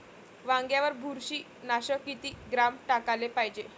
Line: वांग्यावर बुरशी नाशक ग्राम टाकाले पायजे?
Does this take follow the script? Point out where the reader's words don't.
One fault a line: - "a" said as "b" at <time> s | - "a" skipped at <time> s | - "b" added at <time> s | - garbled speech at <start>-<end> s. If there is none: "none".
- "किती" added at 2.0 s